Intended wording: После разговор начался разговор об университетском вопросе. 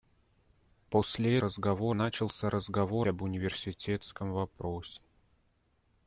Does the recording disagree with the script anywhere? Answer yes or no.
no